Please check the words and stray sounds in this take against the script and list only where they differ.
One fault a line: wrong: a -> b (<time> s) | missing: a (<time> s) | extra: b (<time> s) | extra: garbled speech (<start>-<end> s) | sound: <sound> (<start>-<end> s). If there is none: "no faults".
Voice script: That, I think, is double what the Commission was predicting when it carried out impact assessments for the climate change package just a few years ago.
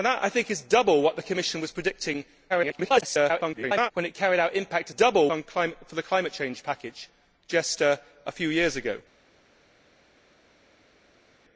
extra: garbled speech (2.5-3.9 s)
wrong: assessments -> double (4.9 s)